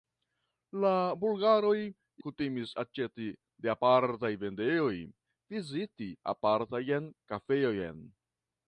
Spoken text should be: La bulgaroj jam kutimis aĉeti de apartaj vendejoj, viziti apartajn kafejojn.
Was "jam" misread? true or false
true